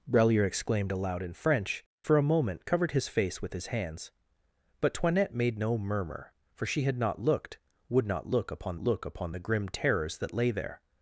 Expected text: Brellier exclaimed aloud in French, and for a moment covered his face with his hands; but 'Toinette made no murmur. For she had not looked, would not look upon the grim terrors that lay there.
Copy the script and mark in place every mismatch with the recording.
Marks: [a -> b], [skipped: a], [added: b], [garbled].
Brellier exclaimed aloud in French, [skipped: and] for a moment covered his face with his hands; but 'Toinette made no murmur. For she had not looked, would not look upon [added: look upon] the grim terrors that lay there.